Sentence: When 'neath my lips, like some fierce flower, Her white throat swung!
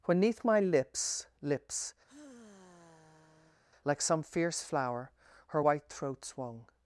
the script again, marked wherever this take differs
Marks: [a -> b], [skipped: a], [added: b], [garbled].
When 'neath my lips, [added: lips] like some fierce flower, Her white throat swung!